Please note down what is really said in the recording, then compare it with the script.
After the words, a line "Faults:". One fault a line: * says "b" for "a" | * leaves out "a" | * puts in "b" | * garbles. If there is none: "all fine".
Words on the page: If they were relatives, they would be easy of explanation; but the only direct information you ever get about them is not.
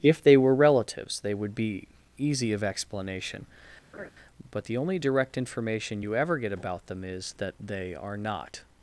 If they were relatives, they would be easy of explanation; but the only direct information you ever get about them is that they are not.
Faults:
* puts in "that they are"